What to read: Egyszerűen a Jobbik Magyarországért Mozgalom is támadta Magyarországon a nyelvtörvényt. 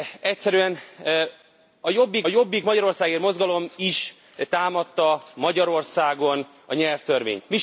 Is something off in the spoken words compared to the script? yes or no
yes